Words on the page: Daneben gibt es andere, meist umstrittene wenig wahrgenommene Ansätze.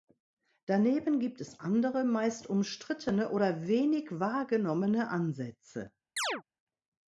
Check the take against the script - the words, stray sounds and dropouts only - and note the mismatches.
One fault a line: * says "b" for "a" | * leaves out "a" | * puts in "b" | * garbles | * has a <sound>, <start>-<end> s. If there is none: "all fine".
* puts in "oder"
* has a chirp, 6.2-6.4 s